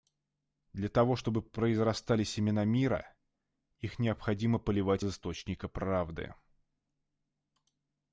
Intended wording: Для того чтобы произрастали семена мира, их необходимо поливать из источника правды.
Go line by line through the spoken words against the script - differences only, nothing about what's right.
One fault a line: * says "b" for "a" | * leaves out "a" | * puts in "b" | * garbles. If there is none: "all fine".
* leaves out "из"